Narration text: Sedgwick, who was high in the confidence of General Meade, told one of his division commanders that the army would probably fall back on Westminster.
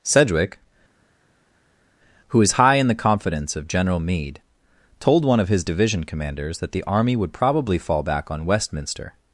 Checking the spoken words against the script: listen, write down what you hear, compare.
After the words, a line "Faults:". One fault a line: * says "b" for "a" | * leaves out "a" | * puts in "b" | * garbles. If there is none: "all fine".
Sedgwick, who was high in the confidence of General Meade, told one of his division commanders that the army would probably fall back on Westminster.
Faults:
all fine